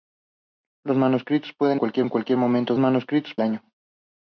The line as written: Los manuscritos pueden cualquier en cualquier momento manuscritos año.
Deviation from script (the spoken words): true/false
false